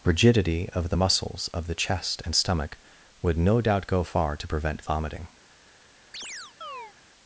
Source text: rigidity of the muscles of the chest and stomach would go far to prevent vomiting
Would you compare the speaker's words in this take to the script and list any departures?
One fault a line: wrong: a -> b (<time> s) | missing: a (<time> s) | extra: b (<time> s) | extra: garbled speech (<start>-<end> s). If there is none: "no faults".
extra: no doubt (3.4 s)